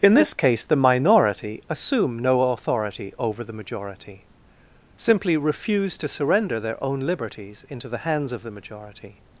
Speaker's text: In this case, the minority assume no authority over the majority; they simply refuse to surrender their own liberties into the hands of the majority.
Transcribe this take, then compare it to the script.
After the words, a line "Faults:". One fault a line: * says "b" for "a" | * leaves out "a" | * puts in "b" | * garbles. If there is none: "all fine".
In this case, the minority assume no authority over the majority; simply refuse to surrender their own liberties into the hands of the majority.
Faults:
* leaves out "they"